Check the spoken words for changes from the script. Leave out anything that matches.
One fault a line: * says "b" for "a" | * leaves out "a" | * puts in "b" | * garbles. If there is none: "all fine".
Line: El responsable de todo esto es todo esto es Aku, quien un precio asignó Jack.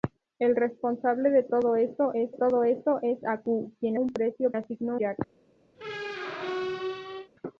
all fine